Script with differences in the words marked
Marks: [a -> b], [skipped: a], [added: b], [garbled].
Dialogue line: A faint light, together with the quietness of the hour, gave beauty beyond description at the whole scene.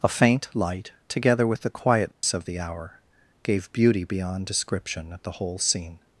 A faint light, together with the quietness of the hour, gave beauty beyond description at the whole scene.